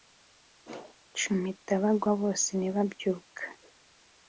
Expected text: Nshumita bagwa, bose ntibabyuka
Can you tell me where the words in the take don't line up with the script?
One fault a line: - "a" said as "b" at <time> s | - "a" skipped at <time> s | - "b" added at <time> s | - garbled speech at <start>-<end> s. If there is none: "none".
none